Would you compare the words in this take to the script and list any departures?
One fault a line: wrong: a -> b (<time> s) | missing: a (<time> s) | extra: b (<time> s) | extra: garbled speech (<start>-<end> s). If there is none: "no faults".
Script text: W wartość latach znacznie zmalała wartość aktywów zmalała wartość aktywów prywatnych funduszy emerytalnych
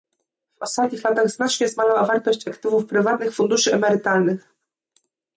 wrong: wartość -> ostatnich (0.6 s)
missing: zmalała wartość aktywów (2.9 s)